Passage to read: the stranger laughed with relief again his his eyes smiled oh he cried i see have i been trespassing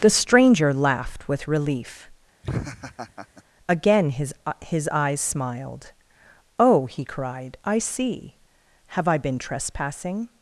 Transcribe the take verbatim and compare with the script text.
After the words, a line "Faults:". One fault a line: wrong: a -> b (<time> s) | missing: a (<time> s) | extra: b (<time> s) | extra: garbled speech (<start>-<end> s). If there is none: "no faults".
the stranger laughed with relief again his his eyes smiled oh he cried i see have i been trespassing
Faults:
no faults